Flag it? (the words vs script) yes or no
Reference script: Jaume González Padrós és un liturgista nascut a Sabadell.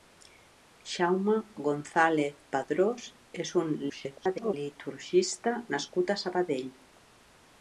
yes